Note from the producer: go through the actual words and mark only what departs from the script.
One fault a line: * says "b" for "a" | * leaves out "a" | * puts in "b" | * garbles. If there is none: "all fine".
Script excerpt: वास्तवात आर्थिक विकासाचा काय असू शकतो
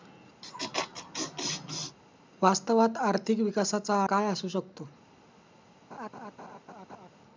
all fine